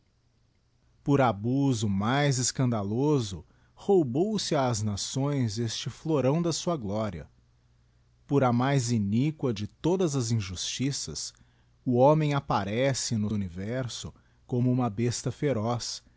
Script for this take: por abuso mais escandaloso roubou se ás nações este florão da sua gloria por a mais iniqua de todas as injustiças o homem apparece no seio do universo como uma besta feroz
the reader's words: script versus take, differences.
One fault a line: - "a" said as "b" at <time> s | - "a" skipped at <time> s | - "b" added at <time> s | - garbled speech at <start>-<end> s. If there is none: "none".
- "seio do" skipped at 13.3 s